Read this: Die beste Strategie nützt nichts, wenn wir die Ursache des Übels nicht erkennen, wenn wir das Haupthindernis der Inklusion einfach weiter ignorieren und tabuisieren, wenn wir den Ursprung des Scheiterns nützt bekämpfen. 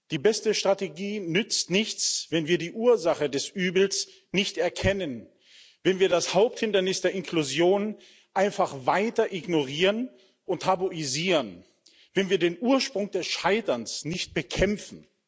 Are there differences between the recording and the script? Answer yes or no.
yes